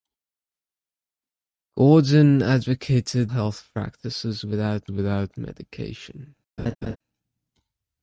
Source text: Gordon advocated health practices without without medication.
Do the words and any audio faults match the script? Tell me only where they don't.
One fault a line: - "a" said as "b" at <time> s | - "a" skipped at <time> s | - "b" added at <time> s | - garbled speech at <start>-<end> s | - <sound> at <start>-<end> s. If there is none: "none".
- laugh at 6.6-7.0 s